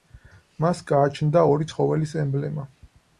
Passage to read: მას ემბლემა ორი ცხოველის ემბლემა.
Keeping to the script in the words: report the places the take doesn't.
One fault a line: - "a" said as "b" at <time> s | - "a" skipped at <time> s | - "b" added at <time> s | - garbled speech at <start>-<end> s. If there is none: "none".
- "ემბლემა" said as "გააჩნდა" at 0.9 s